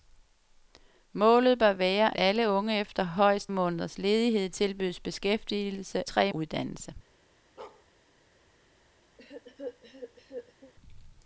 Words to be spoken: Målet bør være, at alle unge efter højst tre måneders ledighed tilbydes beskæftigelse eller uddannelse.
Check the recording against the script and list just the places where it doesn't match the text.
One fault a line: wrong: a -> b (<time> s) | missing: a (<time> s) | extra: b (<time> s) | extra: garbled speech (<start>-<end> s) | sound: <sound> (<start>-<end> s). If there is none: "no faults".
missing: at (2.2 s)
missing: tre (3.5 s)
wrong: eller -> tre (6.1 s)
sound: bark (7.6-7.9 s)
sound: cough (9.2-10.7 s)